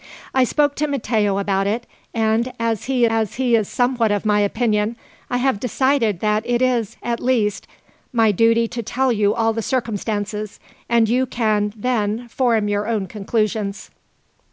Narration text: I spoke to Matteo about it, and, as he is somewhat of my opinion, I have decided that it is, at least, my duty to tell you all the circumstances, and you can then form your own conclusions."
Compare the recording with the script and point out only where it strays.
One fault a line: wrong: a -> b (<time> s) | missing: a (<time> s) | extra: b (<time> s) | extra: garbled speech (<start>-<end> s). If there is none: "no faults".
extra: as he (3.1 s)